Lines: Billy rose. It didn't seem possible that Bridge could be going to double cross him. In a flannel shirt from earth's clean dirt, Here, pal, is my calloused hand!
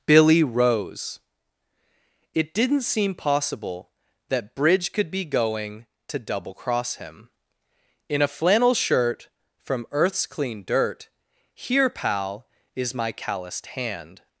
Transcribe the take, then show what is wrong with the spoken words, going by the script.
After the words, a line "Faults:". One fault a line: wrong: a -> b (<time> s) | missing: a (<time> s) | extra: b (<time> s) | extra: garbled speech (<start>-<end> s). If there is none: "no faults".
Billy rose. It didn't seem possible that Bridge could be going to double cross him. In a flannel shirt from earth's clean dirt, Here, pal, is my calloused hand!
Faults:
no faults